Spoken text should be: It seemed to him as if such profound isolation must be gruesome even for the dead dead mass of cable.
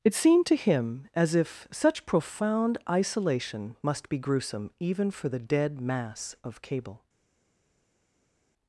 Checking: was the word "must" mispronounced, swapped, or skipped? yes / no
no